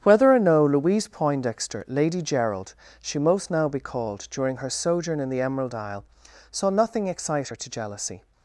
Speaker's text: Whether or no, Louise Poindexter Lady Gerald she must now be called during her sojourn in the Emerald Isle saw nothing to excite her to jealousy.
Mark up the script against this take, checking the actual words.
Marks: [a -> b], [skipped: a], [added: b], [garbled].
Whether or no, Louise Poindexter Lady Gerald she [must -> most] now be called during her sojourn in the Emerald Isle saw nothing [skipped: to] excite her to jealousy.